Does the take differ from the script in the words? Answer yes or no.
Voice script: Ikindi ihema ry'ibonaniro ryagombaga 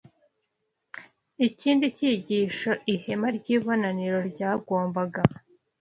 yes